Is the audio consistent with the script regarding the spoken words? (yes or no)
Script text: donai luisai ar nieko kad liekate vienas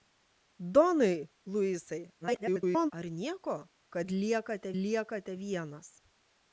no